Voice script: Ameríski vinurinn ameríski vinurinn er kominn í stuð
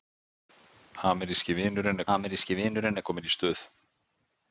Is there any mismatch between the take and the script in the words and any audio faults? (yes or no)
no